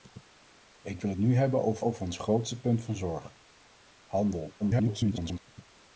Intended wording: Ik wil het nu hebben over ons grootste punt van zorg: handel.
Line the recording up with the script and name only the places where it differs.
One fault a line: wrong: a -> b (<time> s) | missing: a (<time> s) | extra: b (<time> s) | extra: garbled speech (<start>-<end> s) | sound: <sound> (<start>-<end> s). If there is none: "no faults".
extra: over (1.8 s)
extra: garbled speech (4.6-5.4 s)